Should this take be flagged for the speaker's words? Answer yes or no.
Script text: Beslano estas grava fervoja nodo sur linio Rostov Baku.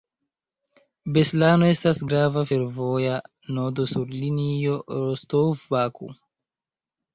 no